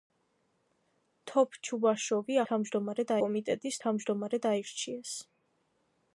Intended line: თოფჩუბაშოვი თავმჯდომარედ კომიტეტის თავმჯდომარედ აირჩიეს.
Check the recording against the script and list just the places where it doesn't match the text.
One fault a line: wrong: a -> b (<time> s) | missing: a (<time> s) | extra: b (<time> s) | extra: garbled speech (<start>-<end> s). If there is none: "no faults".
no faults